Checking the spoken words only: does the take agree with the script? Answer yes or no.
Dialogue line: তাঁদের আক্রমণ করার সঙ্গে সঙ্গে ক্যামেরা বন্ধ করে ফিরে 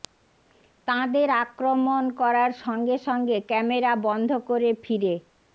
yes